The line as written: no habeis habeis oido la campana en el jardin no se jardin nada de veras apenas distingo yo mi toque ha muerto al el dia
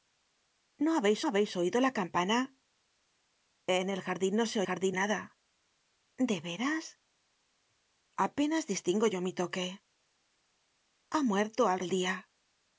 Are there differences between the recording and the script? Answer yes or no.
no